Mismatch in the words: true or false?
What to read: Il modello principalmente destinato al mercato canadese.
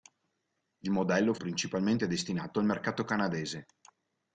false